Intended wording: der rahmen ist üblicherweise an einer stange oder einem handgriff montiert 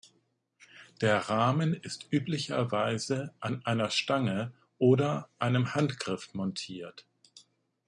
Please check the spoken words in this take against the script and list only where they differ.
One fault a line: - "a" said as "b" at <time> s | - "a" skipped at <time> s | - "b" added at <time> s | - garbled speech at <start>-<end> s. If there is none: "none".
none